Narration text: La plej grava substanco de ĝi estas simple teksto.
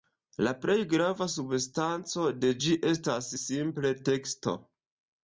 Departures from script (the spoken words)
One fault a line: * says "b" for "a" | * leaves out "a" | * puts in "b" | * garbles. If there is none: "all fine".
all fine